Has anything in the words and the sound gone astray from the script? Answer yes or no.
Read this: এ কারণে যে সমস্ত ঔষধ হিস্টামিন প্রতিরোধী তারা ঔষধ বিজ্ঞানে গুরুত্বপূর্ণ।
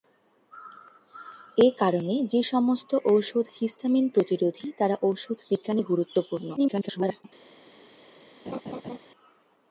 yes